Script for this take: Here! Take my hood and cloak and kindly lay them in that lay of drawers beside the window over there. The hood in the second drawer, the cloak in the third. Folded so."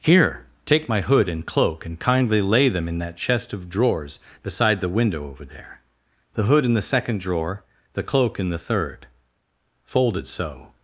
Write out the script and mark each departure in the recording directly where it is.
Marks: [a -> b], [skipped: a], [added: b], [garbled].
Here! Take my hood and cloak and kindly lay them in that [lay -> chest] of drawers beside the window over there. The hood in the second drawer, the cloak in the third. Folded so."